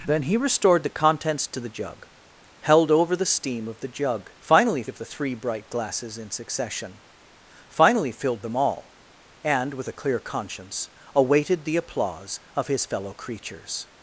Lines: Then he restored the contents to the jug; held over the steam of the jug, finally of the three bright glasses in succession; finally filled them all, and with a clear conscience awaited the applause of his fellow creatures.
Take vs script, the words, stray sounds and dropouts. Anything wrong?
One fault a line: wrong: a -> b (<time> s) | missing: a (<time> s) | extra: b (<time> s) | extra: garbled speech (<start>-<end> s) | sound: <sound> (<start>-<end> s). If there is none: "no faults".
no faults